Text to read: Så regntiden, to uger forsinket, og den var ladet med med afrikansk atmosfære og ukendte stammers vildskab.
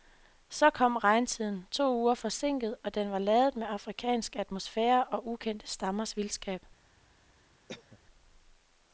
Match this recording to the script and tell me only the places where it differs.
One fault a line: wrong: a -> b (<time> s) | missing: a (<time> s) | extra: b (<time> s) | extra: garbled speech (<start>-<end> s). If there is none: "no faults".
extra: kom (0.7 s)
missing: med (3.7 s)